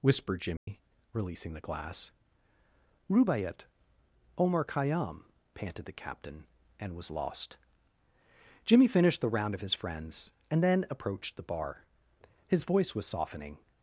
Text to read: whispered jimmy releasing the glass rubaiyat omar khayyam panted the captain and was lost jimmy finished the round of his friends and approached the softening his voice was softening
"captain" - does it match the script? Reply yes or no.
yes